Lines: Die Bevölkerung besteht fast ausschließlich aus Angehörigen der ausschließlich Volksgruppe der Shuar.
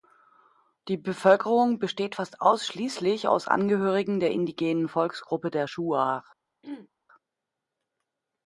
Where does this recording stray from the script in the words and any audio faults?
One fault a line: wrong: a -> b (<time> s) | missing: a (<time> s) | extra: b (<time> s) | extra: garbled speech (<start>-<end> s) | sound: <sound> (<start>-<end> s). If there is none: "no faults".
wrong: ausschließlich -> indigenen (4.3 s)
sound: throat clearing (6.6-6.9 s)